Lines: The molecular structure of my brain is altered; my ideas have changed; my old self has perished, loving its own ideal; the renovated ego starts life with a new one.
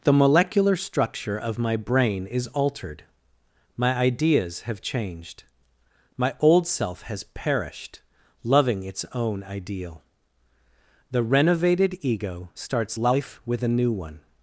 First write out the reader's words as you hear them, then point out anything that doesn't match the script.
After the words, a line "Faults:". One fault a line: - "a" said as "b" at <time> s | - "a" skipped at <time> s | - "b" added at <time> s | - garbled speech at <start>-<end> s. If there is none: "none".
The molecular structure of my brain is altered; my ideas have changed; my old self has perished, loving its own ideal; the renovated ego starts life with a new one.
Faults:
none